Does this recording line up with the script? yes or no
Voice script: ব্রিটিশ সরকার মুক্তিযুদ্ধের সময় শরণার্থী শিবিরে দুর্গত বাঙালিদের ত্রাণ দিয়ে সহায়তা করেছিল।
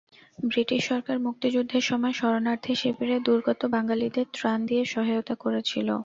yes